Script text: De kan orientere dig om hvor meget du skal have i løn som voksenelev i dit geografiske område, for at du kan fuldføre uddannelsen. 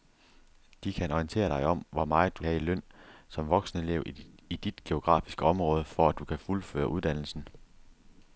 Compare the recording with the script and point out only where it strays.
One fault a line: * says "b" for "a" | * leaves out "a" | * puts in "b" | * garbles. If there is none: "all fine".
* leaves out "skal"